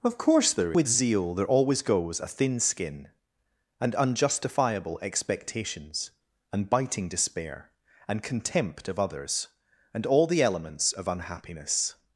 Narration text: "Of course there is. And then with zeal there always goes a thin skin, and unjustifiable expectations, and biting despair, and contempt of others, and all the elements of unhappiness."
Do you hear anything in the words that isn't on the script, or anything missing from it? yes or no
yes